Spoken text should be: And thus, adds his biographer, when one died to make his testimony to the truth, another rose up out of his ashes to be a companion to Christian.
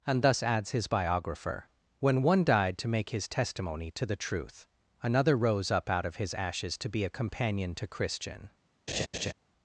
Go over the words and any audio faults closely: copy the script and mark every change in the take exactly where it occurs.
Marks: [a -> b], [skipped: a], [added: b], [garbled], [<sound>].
And thus, adds his biographer, when one died to make his testimony to the truth, another rose up out of his ashes to be a companion to Christian. [laugh]